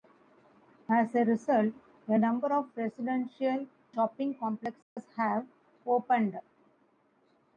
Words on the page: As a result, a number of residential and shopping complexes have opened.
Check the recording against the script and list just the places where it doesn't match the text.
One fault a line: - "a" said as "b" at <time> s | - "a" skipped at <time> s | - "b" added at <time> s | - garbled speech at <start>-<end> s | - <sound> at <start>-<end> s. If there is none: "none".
- "and" skipped at 3.7 s
- dropout at 4.8-5.0 s